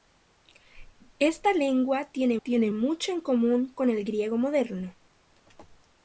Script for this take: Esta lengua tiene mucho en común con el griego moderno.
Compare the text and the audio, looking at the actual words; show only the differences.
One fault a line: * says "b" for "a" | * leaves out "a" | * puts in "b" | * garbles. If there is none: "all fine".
* puts in "tiene"